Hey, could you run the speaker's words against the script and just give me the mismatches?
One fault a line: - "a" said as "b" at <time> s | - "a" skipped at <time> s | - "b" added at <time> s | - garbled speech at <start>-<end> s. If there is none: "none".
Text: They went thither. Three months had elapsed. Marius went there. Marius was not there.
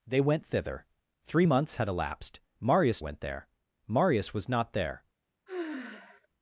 none